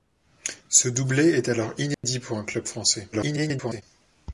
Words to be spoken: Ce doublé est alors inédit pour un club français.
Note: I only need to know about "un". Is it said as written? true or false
true